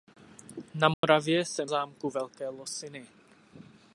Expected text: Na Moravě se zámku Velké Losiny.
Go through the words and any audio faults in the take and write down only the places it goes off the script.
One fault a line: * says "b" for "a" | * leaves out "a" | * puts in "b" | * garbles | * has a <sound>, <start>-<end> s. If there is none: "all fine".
* has a dropout, 0.9-1.0 s